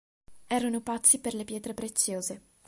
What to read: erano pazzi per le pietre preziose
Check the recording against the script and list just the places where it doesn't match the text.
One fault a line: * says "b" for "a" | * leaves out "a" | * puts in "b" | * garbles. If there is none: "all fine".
all fine